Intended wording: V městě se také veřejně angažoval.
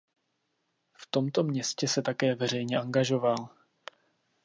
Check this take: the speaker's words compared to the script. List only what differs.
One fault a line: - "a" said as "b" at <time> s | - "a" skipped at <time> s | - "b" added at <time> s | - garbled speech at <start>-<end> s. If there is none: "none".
- "tomto" added at 1.1 s